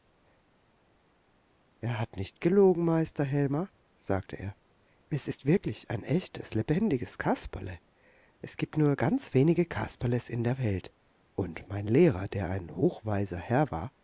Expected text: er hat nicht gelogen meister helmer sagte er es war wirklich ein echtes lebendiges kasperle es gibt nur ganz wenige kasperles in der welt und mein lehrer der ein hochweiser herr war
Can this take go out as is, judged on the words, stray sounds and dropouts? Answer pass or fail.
fail